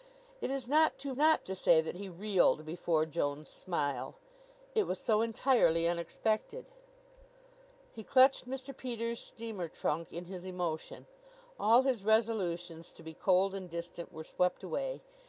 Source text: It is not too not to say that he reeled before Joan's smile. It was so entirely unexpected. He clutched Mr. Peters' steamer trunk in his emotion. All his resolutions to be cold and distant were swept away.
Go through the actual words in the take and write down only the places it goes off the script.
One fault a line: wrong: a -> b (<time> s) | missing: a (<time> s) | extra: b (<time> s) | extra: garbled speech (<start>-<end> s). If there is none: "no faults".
no faults